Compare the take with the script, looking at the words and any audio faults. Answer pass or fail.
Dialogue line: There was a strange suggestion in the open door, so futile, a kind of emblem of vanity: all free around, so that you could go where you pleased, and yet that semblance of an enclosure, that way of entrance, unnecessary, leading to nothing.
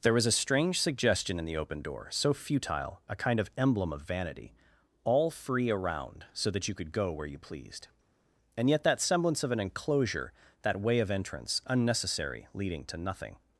pass